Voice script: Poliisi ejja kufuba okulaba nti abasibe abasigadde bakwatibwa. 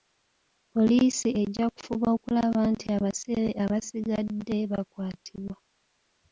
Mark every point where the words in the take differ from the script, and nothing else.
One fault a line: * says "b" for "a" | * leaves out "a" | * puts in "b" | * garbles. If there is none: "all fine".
all fine